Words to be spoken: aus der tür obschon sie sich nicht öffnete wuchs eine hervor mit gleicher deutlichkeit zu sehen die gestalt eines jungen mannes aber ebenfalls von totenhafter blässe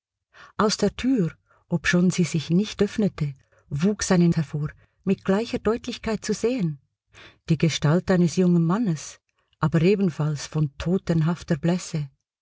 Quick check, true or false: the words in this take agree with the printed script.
true